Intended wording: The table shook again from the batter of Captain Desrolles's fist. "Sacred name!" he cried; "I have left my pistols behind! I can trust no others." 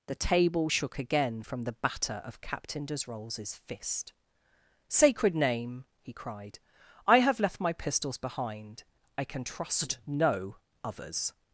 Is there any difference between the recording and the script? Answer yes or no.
no